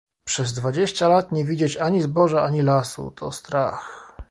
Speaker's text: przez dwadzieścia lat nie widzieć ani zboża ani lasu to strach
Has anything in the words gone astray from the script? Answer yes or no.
no